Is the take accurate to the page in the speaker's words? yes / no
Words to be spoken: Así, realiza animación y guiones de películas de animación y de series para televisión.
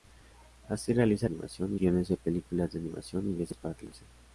yes